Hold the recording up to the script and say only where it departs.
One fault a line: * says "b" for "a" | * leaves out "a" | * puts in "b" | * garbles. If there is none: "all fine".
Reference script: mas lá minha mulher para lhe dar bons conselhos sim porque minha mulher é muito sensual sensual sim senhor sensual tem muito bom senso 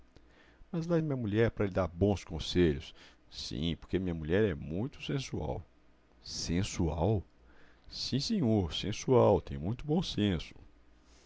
all fine